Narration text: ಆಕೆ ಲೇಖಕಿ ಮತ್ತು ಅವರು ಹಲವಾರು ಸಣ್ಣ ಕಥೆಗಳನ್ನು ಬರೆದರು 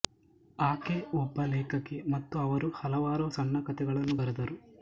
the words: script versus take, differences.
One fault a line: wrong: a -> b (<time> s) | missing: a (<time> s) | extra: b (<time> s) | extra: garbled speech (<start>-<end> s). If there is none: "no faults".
extra: ಒಬ್ಬ (1.1 s)